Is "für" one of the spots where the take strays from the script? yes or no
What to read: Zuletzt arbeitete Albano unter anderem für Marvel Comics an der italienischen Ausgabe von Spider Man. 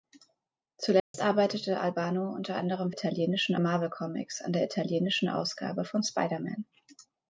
yes